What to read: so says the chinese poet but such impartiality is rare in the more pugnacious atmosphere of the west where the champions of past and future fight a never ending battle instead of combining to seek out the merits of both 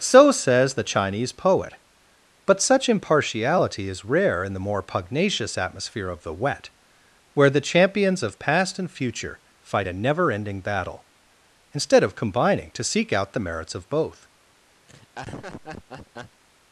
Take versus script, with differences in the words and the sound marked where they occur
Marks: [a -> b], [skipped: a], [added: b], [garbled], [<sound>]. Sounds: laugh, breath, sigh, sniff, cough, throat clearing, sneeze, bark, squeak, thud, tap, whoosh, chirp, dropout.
so says the chinese poet but such impartiality is rare in the more pugnacious atmosphere of the [west -> wet] where the champions of past and future fight a never ending battle instead of combining to seek out the merits of both [laugh]